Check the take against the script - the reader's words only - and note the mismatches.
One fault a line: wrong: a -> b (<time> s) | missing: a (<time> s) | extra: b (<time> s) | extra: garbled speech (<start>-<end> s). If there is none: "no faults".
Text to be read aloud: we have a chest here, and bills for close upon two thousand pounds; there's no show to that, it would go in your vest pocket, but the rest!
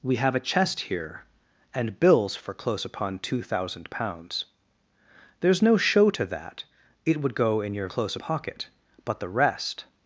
wrong: vest -> close (7.9 s)